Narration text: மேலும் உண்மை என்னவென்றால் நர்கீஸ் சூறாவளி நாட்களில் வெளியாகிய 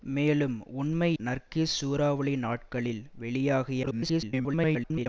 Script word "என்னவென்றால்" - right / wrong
wrong